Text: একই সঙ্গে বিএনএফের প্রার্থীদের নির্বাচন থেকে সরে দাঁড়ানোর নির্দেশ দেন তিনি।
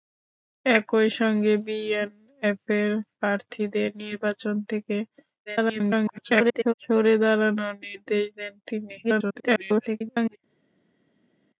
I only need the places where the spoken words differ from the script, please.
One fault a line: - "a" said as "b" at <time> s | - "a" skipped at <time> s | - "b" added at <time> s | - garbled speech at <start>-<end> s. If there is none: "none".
- garbled speech at 5.5-6.7 s
- garbled speech at 9.0-10.4 s